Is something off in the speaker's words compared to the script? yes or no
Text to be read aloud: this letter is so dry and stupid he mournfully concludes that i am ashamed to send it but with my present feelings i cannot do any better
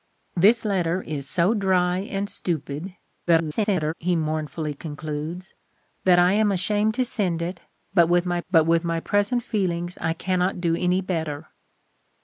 yes